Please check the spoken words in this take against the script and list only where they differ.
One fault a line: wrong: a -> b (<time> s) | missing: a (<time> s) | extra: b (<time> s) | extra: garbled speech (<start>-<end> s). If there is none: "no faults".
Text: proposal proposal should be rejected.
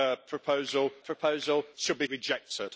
no faults